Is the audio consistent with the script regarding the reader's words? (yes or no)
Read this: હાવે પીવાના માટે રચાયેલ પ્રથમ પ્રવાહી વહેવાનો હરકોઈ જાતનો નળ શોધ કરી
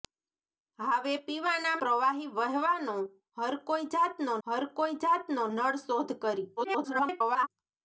no